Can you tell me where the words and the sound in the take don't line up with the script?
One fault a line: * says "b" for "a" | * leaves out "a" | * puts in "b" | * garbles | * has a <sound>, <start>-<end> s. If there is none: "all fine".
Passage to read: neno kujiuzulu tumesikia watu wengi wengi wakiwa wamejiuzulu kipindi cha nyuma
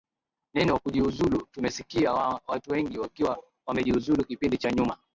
* leaves out "wengi"